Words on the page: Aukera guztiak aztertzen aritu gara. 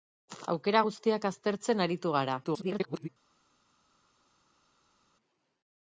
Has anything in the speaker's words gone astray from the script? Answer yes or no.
yes